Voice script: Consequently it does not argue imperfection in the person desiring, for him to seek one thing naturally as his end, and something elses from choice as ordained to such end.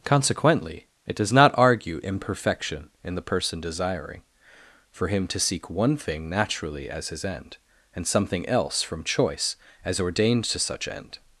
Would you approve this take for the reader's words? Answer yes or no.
no